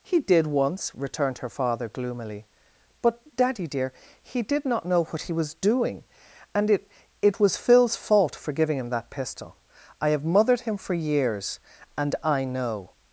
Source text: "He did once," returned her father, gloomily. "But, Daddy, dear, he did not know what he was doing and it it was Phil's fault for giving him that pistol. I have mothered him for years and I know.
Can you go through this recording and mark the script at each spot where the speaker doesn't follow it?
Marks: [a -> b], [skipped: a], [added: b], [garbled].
"He did once," returned her father, gloomily. "But, Daddy, dear, he did not know what he was doing and it it was Phil's fault for giving him that pistol. I have mothered him for years and I know.